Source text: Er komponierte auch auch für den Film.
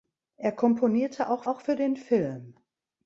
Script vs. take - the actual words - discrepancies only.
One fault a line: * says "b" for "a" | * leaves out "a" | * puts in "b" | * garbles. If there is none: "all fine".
all fine